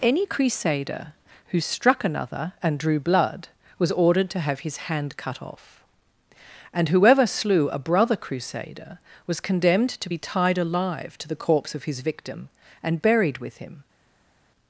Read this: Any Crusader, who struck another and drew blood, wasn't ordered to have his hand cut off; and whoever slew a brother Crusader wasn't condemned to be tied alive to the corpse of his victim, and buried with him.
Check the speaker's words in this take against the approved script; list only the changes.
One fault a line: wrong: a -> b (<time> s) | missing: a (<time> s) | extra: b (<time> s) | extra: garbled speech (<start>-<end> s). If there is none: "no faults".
wrong: wasn't -> was (3.8 s)
wrong: wasn't -> was (9.3 s)